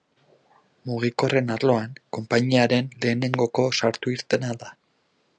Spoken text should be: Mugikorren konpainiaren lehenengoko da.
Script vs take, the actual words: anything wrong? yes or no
yes